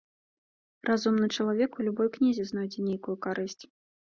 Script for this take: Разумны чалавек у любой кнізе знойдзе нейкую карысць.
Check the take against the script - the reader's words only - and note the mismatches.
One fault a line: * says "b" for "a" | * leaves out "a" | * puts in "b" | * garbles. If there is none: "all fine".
all fine